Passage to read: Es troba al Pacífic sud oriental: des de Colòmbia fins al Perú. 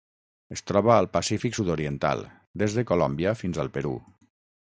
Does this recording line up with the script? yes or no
yes